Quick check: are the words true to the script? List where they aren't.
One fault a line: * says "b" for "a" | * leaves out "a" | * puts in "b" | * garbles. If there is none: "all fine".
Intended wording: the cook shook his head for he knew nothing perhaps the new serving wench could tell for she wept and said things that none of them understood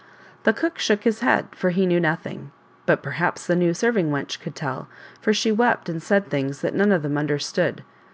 * puts in "but"